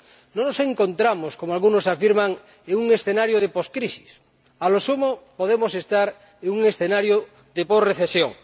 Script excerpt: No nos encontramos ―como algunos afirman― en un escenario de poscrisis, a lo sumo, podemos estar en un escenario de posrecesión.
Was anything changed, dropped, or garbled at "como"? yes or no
no